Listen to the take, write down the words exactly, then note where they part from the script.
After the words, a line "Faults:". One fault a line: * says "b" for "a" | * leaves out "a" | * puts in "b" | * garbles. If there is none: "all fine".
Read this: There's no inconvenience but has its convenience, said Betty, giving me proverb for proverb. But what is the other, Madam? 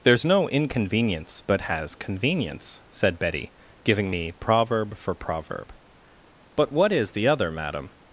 There's no inconvenience but has convenience, said Betty, giving me proverb for proverb. But what is the other, Madam?
Faults:
* leaves out "its"